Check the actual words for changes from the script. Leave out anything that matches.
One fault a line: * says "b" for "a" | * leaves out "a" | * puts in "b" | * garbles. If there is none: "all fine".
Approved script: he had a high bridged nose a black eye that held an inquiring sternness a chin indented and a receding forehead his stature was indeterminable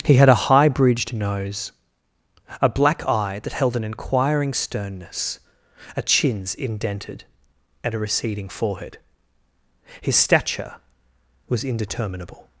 * says "chins" for "chin"